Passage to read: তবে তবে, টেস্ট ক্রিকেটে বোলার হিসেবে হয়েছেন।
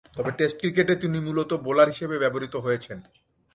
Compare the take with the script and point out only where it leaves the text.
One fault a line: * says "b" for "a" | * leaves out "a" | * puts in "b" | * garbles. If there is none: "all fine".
* leaves out "তবে"
* puts in "তিনি মূলতঃ"
* puts in "ব্যবহৃত"